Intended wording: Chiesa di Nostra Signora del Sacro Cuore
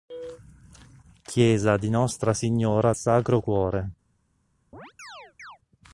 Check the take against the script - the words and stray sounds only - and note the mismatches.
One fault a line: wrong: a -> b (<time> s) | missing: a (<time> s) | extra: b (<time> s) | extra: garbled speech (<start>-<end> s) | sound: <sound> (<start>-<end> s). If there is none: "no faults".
missing: del (3.0 s)
sound: chirp (4.7-5.6 s)